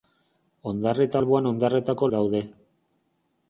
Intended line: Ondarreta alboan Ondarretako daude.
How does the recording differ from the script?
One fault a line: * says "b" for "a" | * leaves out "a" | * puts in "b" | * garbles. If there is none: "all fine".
all fine